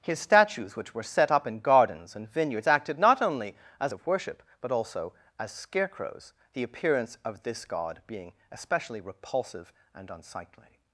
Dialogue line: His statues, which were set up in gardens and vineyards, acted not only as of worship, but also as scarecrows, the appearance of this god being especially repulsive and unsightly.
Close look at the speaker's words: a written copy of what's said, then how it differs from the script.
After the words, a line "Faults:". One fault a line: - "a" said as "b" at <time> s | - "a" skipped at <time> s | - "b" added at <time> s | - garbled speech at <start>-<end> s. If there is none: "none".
His statues, which were set up in gardens and vineyards, acted not only as of worship, but also as scarecrows, the appearance of this god being especially repulsive and unsightly.
Faults:
none